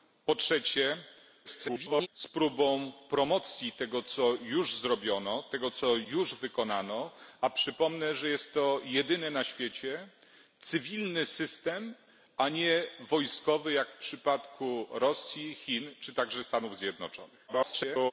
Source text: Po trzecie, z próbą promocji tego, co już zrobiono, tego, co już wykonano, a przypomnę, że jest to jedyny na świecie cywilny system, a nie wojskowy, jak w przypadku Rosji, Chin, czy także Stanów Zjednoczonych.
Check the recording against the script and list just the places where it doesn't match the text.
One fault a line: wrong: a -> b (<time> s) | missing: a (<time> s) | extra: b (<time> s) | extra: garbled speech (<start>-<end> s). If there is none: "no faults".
extra: garbled speech (1.4-2.1 s)
extra: garbled speech (17.5-18.1 s)